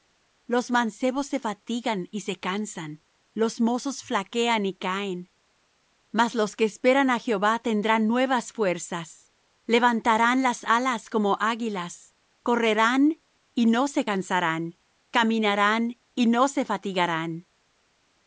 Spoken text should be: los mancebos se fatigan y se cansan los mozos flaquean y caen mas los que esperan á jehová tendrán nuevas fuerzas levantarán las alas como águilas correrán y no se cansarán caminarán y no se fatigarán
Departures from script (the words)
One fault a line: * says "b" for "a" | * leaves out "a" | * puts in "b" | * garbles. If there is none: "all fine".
all fine